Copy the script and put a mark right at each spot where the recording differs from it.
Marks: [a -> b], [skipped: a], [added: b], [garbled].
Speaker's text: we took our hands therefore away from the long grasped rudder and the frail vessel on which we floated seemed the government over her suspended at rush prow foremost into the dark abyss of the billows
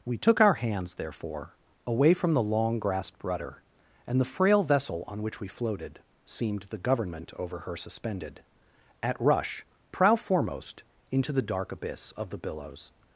we took our hands therefore away from the long grasped rudder and the frail vessel on which we floated seemed the government over her suspended at rush prow foremost into the dark abyss of the billows